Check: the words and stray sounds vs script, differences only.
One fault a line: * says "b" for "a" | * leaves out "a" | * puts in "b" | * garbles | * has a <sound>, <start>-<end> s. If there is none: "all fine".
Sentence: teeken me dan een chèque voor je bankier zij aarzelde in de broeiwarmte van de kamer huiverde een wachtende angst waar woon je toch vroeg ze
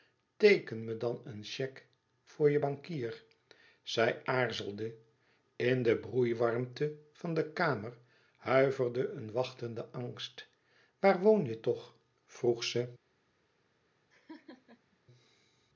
* has a laugh, 14.1-15.0 s